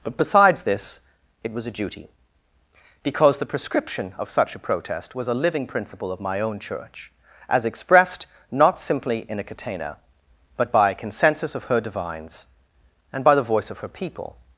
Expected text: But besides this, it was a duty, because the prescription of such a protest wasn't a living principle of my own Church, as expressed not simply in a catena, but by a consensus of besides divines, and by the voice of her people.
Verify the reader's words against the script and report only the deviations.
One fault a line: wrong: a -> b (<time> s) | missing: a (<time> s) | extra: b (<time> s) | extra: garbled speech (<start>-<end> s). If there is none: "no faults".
wrong: wasn't -> was (5.1 s)
wrong: besides -> her (11.6 s)